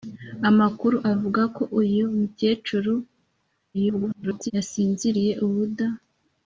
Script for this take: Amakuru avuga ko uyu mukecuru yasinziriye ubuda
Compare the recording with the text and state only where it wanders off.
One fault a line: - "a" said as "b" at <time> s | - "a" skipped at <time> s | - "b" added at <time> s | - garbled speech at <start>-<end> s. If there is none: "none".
- garbled speech at 3.7-4.5 s